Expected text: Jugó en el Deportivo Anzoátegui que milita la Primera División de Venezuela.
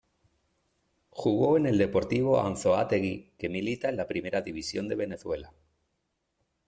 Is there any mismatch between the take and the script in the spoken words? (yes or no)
yes